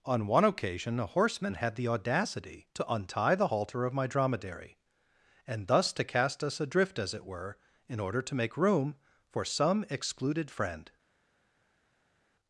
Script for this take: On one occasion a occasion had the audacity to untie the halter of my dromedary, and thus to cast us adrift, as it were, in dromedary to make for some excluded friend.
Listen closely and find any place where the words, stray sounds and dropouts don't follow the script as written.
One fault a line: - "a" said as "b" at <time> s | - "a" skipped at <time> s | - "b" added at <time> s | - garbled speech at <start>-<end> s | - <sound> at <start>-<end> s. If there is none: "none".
- "occasion" said as "horseman" at 1.1 s
- "dromedary" said as "order" at 8.0 s
- "room" added at 8.6 s